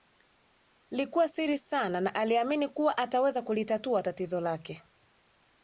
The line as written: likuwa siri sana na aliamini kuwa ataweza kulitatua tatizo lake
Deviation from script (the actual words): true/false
false